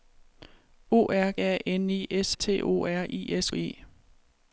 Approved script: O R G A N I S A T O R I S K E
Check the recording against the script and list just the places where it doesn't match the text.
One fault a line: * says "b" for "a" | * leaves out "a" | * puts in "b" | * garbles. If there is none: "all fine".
* leaves out "G"
* leaves out "A"
* leaves out "K"